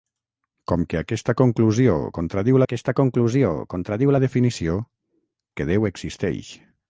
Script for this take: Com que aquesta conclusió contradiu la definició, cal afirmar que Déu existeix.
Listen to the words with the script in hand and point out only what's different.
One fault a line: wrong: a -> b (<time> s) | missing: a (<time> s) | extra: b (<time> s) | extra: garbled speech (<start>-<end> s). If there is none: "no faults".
extra: aquesta conclusió contradiu (2.6 s)
missing: cal afirmar (4.8 s)